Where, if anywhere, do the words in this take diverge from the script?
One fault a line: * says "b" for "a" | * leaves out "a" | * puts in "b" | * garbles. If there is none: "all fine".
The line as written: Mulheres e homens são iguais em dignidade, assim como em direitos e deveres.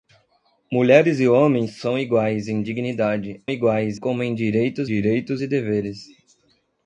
* says "iguais" for "assim"
* puts in "direitos"